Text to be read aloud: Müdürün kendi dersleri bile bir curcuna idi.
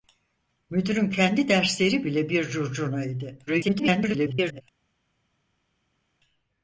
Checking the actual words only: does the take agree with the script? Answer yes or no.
no